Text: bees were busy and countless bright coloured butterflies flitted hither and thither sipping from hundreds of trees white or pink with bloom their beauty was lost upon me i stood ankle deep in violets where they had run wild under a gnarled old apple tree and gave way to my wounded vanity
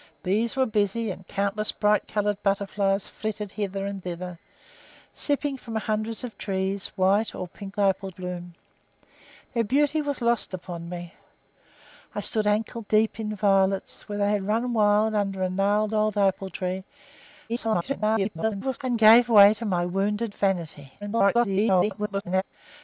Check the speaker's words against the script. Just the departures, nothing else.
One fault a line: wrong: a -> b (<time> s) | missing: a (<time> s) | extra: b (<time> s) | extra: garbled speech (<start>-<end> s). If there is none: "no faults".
wrong: with -> apple (7.8 s)
extra: garbled speech (17.5-18.8 s)
extra: garbled speech (21.0-22.4 s)